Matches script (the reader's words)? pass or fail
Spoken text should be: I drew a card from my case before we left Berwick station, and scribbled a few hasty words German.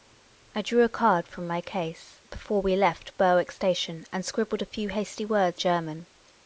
pass